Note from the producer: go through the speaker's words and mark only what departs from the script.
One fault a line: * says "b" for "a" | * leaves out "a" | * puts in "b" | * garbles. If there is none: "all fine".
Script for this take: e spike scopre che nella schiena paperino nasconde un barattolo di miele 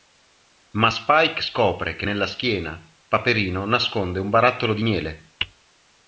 * says "ma" for "e"